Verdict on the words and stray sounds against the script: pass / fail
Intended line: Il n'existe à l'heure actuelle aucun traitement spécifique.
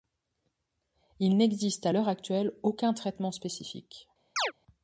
fail